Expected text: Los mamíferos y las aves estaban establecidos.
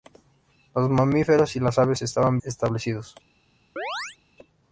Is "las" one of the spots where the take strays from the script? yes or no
no